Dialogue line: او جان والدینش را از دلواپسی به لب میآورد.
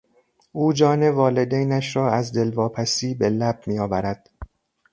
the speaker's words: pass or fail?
pass